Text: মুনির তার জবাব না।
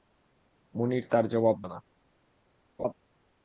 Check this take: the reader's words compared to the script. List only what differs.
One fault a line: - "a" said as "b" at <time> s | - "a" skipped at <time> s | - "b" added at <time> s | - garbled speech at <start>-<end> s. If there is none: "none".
none